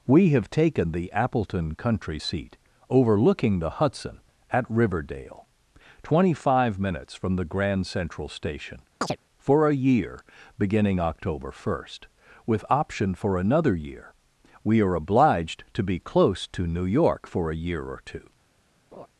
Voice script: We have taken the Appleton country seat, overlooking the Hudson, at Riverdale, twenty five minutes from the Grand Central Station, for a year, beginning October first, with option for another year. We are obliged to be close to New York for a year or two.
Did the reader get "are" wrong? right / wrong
right